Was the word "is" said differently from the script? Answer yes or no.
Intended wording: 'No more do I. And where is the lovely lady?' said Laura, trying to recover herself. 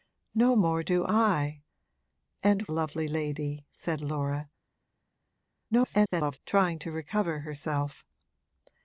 yes